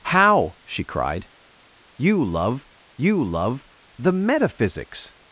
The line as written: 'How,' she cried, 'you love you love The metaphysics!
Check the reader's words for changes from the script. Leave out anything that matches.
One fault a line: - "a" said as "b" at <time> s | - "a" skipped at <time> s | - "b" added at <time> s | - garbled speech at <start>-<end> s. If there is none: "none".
none